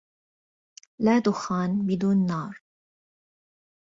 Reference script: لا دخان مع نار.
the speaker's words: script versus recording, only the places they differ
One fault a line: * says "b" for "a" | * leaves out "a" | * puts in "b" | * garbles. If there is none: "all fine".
* says "بدون" for "مع"